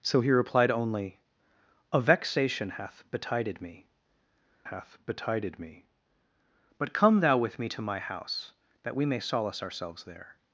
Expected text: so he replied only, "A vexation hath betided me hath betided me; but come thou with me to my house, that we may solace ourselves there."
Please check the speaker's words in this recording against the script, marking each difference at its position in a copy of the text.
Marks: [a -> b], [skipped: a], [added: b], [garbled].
so he replied only, "A vexation hath betided me hath betided me; but come thou with me to my house, that we may solace ourselves there."